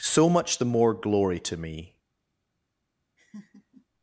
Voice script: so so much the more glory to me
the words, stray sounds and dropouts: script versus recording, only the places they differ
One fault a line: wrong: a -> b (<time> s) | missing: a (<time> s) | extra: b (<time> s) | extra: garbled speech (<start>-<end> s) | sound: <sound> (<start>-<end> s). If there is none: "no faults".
missing: so (0.3 s)
sound: laugh (3.2-3.9 s)